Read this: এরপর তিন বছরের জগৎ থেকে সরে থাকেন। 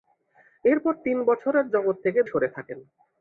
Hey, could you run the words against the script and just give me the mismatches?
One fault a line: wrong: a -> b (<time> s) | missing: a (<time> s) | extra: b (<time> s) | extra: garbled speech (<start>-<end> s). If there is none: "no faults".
no faults